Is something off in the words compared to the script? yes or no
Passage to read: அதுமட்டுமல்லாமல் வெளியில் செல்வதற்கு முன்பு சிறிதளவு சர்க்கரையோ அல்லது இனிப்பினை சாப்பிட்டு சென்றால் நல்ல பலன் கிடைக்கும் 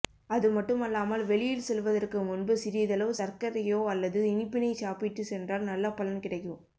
no